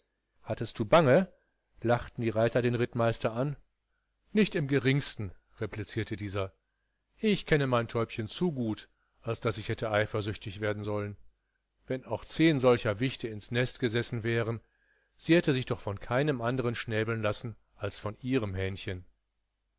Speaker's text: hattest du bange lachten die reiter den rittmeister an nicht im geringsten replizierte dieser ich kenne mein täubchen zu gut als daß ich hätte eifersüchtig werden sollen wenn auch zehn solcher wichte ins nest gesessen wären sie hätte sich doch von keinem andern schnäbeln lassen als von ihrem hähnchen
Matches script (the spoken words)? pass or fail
pass